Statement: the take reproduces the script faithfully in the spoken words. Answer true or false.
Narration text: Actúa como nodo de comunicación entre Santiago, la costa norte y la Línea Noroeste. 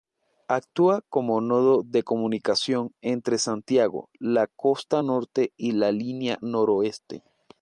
true